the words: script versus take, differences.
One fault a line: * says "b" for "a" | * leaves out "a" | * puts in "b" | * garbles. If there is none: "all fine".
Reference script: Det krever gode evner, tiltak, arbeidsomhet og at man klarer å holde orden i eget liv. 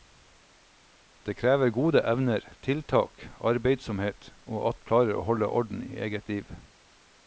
* leaves out "man"